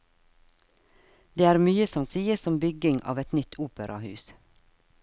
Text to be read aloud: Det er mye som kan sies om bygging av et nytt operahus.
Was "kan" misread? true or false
true